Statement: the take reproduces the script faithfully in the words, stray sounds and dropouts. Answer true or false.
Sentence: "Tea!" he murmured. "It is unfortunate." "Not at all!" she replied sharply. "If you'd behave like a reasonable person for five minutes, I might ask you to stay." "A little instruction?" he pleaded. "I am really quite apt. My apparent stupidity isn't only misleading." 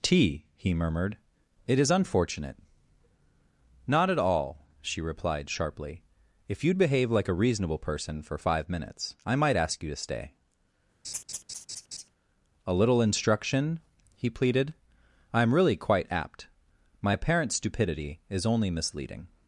false